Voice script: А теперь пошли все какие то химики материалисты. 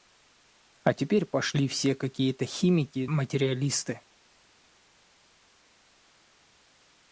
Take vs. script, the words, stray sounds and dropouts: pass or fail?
pass